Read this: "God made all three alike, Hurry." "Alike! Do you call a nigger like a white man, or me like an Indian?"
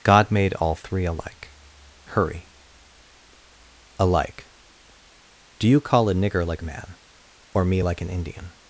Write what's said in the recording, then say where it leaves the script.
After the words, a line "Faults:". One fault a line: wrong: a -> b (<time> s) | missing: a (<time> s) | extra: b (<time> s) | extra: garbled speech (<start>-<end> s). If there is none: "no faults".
"God made all three alike, Hurry." "Alike! Do you call a nigger like man, or me like an Indian?"
Faults:
missing: a white (6.6 s)